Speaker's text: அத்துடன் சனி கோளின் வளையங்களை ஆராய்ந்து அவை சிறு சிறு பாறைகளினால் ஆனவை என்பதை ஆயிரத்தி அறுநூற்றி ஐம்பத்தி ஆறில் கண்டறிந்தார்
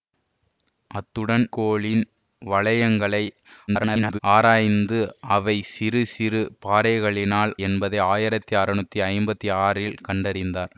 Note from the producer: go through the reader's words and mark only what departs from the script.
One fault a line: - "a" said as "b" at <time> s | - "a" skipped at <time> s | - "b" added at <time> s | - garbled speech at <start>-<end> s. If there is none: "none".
- "சனி" skipped at 1.4 s
- garbled speech at 3.7-4.2 s
- "ஆனவை" skipped at 7.5 s